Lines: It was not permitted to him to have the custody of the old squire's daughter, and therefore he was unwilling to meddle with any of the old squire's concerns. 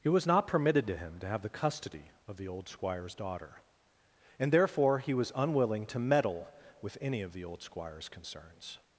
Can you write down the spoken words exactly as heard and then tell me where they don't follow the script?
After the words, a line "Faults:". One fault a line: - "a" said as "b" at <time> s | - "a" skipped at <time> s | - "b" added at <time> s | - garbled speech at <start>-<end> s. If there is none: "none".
It was not permitted to him to have the custody of the old squire's daughter, and therefore he was unwilling to meddle with any of the old squire's concerns.
Faults:
none